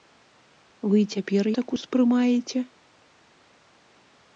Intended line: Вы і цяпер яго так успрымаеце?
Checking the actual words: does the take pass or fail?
fail